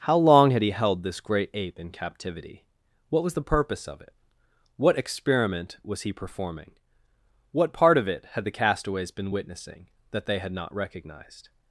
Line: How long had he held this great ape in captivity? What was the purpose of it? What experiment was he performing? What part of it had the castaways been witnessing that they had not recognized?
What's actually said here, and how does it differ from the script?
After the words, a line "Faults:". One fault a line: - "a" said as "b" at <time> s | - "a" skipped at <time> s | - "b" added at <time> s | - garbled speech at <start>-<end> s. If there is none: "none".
How long had he held this great ape in captivity? What was the purpose of it? What experiment was he performing? What part of it had the castaways been witnessing that they had not recognized?
Faults:
none